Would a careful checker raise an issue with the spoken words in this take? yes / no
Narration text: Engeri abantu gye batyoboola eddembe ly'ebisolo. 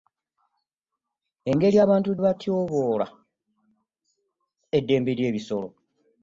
yes